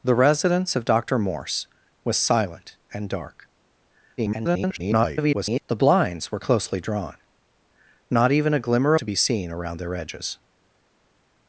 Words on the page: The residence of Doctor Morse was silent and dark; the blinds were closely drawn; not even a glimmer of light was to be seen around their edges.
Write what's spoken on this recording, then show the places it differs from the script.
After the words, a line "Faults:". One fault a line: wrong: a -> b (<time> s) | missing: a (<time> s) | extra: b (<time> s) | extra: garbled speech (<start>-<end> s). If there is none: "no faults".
The residence of Doctor Morse was silent and dark; [garbled] the blinds were closely drawn; not even a glimmer to be seen around their edges.
Faults:
extra: garbled speech (4.2-5.6 s)
missing: of light was (8.9 s)